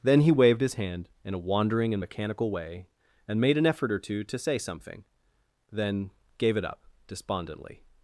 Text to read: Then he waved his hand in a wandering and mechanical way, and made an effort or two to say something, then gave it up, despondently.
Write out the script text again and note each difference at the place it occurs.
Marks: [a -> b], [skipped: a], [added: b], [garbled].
Then he waved his hand in a wandering and mechanical way, and made an effort or two to say something, then gave it up, despondently.